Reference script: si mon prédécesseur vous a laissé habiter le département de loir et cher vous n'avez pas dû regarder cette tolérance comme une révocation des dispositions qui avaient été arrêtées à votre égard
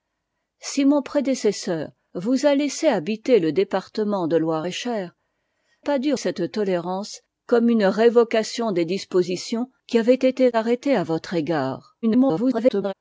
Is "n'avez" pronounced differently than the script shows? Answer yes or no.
yes